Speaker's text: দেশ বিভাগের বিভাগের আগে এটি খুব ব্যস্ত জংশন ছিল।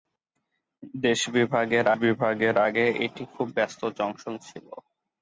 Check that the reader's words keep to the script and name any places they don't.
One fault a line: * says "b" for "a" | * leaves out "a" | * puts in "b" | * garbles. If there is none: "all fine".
all fine